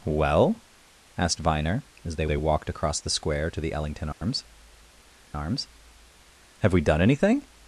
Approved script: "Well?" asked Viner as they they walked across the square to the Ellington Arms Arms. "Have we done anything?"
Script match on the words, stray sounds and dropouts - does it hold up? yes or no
no